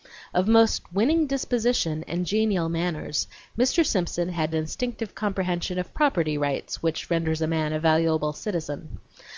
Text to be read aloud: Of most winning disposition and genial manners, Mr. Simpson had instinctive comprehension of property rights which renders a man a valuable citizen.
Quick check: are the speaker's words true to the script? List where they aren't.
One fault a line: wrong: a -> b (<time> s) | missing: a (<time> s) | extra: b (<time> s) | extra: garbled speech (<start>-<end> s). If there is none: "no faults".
no faults